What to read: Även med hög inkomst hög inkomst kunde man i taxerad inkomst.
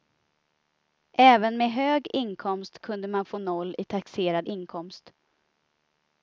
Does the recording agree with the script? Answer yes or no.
no